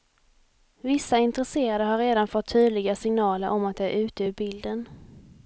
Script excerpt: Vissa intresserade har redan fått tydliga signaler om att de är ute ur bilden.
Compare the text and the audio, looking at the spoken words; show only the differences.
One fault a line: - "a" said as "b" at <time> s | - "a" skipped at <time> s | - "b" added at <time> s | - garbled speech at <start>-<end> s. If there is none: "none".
none